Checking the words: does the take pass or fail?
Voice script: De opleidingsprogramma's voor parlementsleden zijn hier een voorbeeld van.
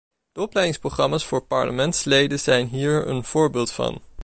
pass